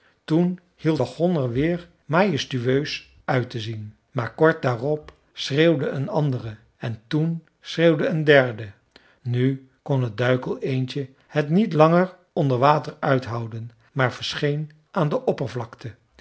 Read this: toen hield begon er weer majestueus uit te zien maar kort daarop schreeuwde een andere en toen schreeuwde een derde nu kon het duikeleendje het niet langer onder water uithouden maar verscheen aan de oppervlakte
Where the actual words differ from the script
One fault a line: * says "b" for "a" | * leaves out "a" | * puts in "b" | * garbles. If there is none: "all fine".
all fine